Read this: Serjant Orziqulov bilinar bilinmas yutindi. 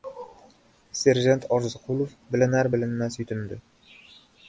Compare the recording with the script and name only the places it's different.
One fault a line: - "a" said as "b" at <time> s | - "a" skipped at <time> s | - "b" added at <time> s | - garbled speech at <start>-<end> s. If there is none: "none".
none